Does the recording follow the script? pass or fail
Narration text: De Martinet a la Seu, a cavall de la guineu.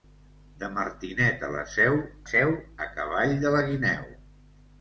fail